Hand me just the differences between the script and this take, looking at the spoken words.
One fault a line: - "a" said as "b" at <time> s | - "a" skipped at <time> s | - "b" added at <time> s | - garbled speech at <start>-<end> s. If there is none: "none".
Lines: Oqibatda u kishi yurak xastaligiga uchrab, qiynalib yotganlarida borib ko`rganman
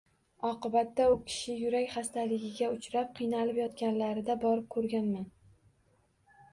none